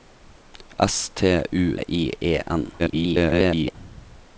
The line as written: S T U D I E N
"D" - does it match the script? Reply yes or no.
no